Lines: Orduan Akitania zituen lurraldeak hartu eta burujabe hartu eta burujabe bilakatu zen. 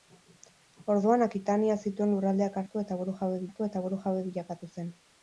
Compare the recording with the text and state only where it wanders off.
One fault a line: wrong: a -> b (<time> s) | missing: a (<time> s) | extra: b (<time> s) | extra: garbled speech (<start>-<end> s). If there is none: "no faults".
no faults